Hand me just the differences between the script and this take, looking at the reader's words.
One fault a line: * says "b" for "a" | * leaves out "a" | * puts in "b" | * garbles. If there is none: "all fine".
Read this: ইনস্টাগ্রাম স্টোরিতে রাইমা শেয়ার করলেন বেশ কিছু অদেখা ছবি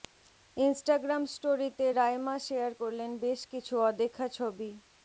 all fine